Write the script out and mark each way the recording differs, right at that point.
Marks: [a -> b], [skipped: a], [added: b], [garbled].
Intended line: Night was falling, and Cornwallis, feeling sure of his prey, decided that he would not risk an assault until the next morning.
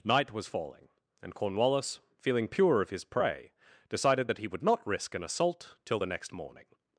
Night was falling, and Cornwallis, feeling [sure -> pure] of his prey, decided that he would not risk an assault [until -> till] the next morning.